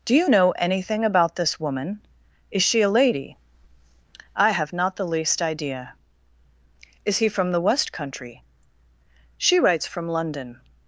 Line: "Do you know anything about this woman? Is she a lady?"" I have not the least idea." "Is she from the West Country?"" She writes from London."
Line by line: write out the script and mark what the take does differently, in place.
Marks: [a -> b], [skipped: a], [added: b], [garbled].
"Do you know anything about this woman? Is she a lady?"" I have not the least idea." "Is [she -> he] from the West Country?"" She writes from London."